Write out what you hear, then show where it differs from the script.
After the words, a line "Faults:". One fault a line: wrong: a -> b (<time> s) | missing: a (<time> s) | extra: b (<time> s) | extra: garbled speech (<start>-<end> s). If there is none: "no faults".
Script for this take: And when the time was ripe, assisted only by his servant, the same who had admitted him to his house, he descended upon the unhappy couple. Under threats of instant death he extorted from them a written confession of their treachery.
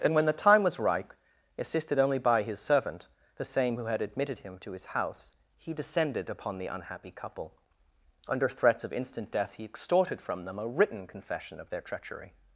And when the time was ripe, assisted only by his servant, the same who had admitted him to his house, he descended upon the unhappy couple. Under threats of instant death he extorted from them a written confession of their treachery.
Faults:
no faults